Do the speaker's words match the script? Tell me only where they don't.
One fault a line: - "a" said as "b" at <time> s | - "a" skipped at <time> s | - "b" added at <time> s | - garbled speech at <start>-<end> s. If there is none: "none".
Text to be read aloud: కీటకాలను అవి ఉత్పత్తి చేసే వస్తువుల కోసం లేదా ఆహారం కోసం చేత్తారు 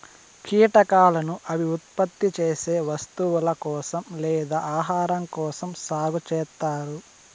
- "సాగు" added at 5.8 s